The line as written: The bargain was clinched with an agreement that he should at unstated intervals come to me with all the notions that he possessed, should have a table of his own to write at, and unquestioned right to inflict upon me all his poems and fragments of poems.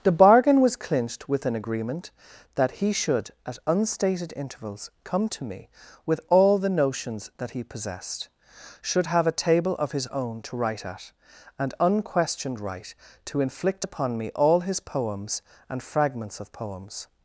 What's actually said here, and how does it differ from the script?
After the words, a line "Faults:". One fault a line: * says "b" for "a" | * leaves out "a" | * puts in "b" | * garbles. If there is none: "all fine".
The bargain was clinched with an agreement that he should at unstated intervals come to me with all the notions that he possessed, should have a table of his own to write at, and unquestioned right to inflict upon me all his poems and fragments of poems.
Faults:
all fine